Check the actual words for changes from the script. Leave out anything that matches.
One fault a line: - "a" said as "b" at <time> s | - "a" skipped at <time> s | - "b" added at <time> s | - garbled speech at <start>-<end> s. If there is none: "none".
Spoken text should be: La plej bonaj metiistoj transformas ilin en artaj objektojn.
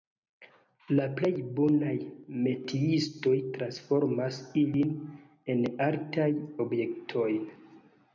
none